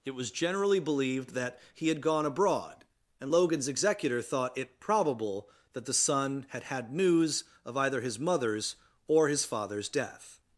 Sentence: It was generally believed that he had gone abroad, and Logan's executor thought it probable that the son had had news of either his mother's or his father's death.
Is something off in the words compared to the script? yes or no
no